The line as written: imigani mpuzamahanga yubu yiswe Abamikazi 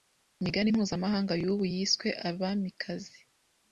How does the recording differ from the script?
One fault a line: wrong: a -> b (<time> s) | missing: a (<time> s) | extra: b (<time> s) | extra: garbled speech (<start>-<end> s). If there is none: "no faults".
no faults